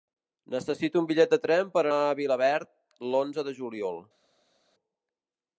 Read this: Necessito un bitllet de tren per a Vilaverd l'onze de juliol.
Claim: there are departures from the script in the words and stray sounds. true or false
false